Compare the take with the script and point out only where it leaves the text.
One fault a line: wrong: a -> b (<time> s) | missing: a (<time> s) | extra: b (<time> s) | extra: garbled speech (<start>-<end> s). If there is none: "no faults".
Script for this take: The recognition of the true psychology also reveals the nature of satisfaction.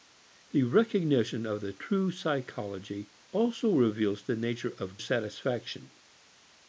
no faults